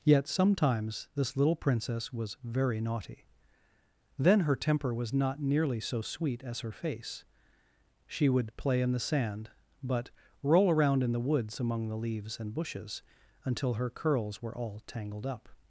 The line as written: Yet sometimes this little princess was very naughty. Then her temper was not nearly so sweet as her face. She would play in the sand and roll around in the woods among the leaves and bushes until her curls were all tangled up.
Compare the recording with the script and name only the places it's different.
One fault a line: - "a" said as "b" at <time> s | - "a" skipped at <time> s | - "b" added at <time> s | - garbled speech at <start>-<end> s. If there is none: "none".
- "and" said as "but" at 9.8 s